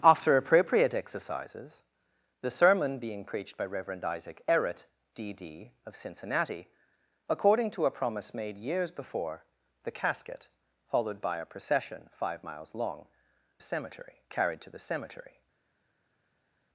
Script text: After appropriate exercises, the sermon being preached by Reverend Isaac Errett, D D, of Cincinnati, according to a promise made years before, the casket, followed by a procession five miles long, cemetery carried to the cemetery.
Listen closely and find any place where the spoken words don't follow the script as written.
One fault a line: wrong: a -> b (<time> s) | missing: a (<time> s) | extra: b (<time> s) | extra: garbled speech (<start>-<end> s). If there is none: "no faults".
no faults